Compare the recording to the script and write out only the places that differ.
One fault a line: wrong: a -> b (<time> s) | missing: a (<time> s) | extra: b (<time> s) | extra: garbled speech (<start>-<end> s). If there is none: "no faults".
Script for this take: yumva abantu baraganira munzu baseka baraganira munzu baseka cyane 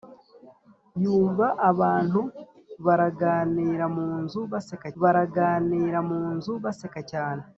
no faults